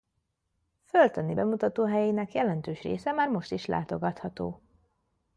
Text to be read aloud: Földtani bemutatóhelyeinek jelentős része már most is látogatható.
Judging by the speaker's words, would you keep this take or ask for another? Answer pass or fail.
pass